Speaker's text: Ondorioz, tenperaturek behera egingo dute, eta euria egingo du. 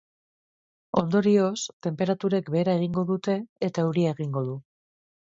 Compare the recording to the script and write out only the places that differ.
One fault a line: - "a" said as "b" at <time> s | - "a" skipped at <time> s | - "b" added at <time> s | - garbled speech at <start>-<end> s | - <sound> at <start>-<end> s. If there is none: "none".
none